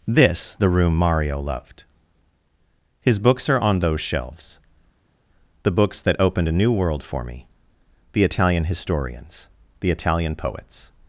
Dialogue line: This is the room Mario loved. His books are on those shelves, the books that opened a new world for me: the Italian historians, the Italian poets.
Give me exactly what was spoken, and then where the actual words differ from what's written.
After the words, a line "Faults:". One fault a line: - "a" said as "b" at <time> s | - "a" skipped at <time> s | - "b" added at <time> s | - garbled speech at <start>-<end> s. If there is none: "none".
This the room Mario loved. His books are on those shelves, the books that opened a new world for me: the Italian historians, the Italian poets.
Faults:
- "is" skipped at 0.6 s